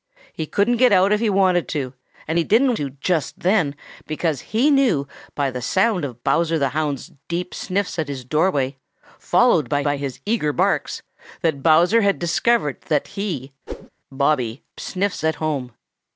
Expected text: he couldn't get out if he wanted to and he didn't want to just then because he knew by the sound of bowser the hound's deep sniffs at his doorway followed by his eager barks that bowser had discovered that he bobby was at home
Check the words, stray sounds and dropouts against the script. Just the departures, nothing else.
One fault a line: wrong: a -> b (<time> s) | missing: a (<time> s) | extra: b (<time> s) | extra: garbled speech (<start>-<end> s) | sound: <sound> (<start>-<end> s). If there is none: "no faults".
missing: want (2.8 s)
extra: by (9.8 s)
sound: whoosh (13.7-13.9 s)
wrong: was -> sniffs (14.8 s)